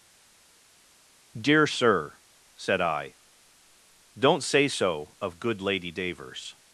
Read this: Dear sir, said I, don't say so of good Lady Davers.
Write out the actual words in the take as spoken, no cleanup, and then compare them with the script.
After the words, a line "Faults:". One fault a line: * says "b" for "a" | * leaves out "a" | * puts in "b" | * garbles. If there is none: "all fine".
Dear sir, said I, don't say so of good Lady Davers.
Faults:
all fine